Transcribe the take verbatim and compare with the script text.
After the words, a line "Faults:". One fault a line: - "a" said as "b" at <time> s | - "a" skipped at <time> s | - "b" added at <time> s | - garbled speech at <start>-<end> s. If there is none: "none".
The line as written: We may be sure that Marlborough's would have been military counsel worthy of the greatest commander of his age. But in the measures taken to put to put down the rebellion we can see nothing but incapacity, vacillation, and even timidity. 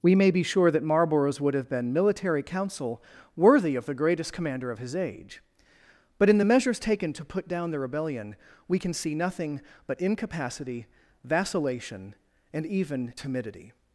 We may be sure that Marlborough's would have been military counsel worthy of the greatest commander of his age. But in the measures taken to put down the rebellion we can see nothing but incapacity, vacillation, and even timidity.
Faults:
- "to put" skipped at 7.5 s